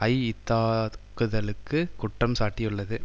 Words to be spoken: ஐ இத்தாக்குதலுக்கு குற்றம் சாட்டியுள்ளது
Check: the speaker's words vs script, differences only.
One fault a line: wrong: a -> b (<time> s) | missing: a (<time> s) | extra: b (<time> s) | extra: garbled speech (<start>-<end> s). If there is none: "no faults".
no faults